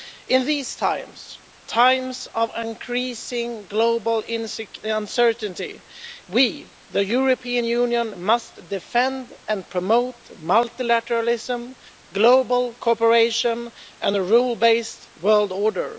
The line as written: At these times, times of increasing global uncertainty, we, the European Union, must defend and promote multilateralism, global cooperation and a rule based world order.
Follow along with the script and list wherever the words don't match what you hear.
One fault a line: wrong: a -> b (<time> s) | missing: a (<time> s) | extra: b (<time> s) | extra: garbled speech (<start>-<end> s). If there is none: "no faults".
wrong: At -> In (0.3 s)